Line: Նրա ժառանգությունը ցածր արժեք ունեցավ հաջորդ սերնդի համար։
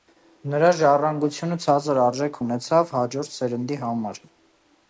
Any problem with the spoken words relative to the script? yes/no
no